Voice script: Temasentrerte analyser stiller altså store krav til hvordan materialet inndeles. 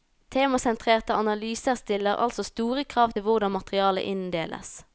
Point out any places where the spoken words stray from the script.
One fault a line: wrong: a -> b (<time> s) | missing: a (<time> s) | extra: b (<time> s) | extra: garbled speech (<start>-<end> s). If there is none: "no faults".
no faults